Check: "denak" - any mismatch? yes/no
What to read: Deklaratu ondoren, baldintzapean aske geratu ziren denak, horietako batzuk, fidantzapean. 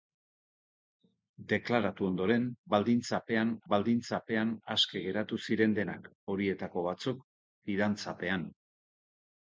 no